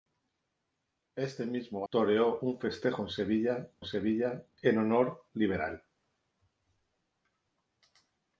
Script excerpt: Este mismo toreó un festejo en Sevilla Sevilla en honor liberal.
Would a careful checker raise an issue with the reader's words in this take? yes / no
no